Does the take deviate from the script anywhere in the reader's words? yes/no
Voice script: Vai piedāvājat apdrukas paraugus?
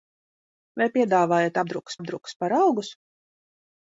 yes